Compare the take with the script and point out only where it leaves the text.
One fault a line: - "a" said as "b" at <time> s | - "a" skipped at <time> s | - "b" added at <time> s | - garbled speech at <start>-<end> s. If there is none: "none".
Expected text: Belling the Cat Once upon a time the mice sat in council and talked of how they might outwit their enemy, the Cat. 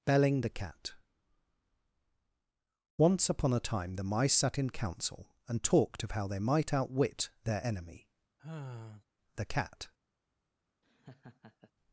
none